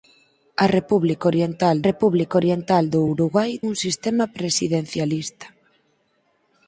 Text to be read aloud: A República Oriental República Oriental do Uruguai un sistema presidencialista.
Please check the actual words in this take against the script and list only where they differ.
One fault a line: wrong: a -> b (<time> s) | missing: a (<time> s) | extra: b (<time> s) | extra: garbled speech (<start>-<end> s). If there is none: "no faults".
no faults